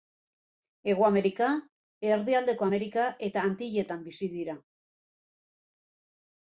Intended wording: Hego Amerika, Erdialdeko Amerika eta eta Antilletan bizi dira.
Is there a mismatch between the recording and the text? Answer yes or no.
yes